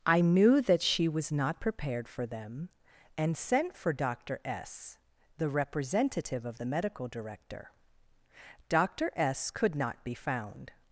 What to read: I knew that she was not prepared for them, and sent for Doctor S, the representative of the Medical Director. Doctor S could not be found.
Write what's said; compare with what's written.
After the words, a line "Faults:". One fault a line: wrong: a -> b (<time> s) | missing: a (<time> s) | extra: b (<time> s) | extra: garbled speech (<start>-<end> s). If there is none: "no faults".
I knew that she was not prepared for them, and sent for Doctor S, the representative of the Medical Director. Doctor S could not be found.
Faults:
no faults